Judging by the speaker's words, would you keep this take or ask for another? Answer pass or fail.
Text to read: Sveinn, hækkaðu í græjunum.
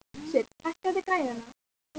pass